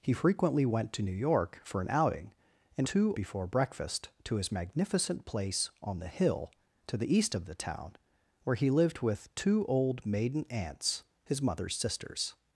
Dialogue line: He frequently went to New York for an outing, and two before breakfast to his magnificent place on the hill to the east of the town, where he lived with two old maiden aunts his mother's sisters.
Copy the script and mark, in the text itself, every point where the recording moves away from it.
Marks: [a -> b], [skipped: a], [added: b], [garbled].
He frequently went to New York for an outing, and two before breakfast to his magnificent place on the hill to the east of the town, where he lived with two old maiden aunts his mother's sisters.